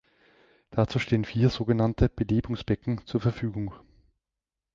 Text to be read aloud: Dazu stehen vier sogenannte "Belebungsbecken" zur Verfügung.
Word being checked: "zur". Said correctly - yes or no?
yes